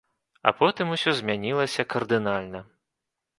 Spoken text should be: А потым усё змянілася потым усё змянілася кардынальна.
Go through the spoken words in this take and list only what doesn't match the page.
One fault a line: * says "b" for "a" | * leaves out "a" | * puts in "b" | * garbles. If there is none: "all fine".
* leaves out "потым усё змянілася"